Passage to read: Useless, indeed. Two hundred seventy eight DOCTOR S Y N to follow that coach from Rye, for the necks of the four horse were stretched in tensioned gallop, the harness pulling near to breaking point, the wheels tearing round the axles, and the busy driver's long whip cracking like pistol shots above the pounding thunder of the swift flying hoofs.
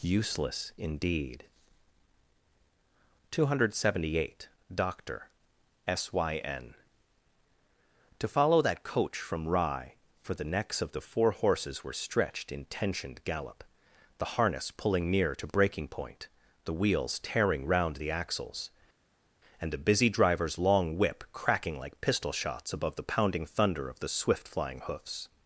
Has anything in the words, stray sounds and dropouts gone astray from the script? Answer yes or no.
yes